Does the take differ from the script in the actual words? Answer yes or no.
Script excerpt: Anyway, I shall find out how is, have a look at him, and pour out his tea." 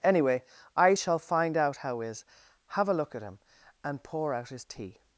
no